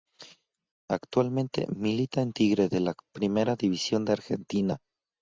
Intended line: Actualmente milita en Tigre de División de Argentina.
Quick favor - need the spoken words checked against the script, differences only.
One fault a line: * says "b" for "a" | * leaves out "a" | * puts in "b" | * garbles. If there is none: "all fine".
* puts in "la Primera"